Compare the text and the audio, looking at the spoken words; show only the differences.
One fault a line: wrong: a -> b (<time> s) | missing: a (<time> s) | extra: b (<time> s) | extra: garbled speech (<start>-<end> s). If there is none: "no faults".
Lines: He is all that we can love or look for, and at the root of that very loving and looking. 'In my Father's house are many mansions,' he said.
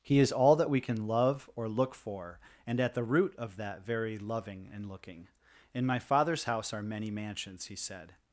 no faults